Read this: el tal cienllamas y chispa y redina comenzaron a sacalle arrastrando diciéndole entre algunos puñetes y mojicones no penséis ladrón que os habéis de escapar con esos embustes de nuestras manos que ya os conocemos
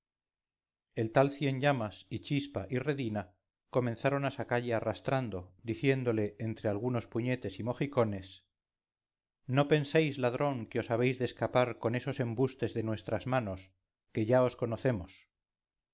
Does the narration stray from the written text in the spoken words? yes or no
no